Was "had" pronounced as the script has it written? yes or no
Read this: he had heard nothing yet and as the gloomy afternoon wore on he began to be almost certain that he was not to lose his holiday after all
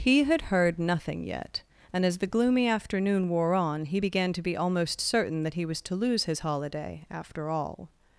yes